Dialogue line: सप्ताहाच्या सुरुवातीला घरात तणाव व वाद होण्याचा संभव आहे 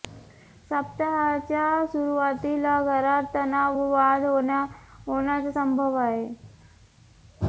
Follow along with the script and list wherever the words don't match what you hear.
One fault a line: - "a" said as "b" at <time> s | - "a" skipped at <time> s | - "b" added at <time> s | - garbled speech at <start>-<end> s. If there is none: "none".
none